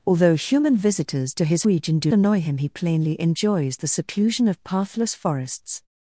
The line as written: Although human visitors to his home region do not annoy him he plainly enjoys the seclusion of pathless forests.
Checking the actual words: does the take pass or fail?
fail